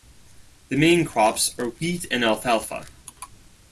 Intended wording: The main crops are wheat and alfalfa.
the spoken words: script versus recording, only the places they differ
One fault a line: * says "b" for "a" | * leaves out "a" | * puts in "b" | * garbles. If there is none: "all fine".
all fine